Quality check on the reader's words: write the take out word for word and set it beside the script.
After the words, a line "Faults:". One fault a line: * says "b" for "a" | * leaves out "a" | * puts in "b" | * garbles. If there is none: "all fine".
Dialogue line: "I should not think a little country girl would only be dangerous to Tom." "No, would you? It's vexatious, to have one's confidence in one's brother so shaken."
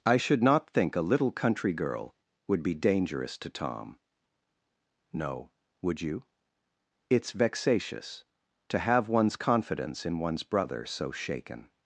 "I should not think a little country girl would be dangerous to Tom." "No, would you? It's vexatious, to have one's confidence in one's brother so shaken."
Faults:
* leaves out "only"